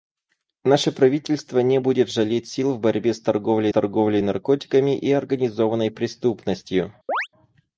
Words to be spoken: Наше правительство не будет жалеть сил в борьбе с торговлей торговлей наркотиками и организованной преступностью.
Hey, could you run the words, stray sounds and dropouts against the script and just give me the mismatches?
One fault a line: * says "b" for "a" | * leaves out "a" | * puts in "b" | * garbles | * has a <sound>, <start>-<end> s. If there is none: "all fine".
* has a chirp, 7.1-7.3 s